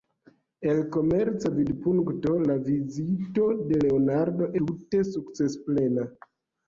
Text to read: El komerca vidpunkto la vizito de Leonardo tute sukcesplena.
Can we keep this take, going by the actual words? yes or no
yes